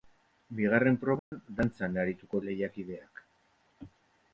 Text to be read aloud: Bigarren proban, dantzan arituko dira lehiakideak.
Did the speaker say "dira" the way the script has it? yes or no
no